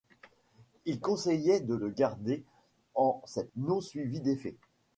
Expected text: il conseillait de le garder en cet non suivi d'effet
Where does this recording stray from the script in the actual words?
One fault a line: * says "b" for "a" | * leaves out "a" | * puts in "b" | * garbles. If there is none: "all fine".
all fine